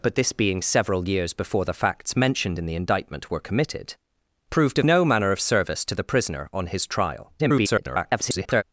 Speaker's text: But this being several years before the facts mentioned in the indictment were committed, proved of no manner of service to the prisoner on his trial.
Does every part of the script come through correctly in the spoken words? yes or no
no